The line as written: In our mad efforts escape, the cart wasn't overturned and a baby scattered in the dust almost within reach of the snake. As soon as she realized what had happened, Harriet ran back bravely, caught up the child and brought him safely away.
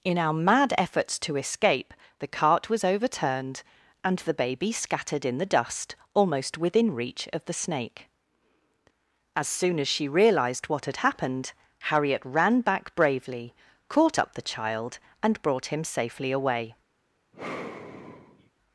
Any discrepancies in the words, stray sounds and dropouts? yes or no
yes